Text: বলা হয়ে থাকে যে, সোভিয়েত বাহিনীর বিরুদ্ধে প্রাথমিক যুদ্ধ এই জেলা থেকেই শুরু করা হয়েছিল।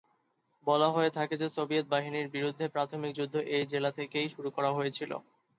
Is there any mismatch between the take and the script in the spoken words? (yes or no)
no